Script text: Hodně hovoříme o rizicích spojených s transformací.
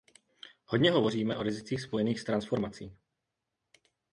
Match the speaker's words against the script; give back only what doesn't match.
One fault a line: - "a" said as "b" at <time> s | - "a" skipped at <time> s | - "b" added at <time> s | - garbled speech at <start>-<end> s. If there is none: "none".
none